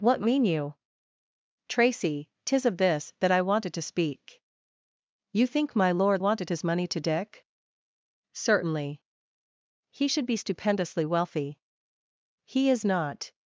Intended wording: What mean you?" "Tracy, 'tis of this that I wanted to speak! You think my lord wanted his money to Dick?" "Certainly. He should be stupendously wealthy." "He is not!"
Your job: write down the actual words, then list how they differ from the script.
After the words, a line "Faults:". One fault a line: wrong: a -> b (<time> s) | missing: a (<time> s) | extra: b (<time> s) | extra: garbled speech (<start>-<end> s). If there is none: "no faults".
What mean you?" "Tracy, 'tis of this that I wanted to speak! You think my lord wanted his money to Dick?" "Certainly. He should be stupendously wealthy." "He is not!"
Faults:
no faults